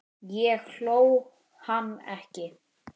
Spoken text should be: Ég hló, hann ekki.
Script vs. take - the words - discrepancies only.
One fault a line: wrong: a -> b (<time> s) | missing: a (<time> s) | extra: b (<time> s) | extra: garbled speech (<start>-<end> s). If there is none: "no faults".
no faults